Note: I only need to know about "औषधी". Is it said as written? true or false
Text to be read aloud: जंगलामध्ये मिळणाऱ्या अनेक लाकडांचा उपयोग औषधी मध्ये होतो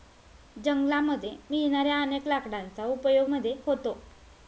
false